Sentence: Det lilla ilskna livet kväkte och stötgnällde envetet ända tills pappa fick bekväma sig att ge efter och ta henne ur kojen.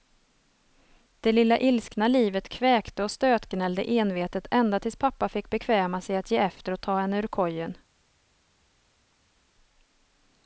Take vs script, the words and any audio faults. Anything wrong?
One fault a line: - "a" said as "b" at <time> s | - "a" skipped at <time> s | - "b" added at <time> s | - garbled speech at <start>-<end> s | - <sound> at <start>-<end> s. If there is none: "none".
none